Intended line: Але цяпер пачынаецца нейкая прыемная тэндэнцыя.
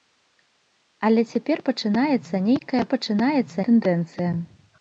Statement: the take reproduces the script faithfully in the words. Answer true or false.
false